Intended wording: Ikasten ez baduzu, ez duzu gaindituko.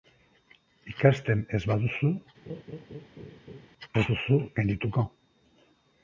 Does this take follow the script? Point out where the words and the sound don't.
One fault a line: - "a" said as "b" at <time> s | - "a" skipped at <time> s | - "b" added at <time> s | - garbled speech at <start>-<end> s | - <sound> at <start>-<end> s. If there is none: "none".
- laugh at 2.4-3.7 s